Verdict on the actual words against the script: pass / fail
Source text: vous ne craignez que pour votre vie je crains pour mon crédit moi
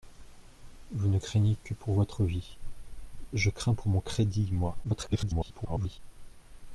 fail